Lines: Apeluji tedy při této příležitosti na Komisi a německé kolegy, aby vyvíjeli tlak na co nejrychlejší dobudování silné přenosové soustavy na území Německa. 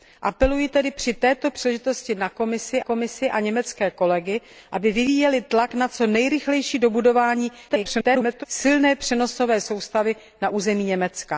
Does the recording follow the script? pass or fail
fail